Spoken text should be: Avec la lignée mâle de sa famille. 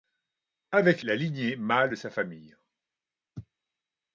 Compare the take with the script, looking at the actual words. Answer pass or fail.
pass